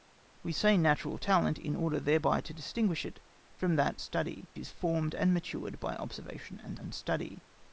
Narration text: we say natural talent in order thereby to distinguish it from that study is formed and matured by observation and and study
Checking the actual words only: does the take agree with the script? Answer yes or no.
yes